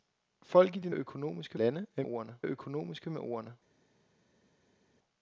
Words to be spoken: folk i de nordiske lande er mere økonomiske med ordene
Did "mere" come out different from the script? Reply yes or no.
yes